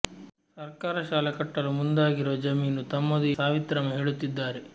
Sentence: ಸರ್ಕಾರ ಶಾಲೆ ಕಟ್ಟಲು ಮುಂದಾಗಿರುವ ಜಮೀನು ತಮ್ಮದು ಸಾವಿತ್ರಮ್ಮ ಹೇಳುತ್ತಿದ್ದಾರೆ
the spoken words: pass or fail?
pass